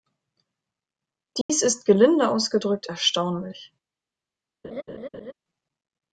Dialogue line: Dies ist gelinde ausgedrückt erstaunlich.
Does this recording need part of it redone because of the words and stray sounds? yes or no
yes